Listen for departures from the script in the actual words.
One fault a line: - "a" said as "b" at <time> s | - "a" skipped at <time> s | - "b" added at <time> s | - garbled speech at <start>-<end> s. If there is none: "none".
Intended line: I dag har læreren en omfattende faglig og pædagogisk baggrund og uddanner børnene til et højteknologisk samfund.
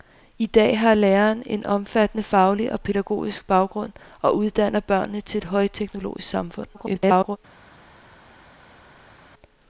- garbled speech at 6.7-7.4 s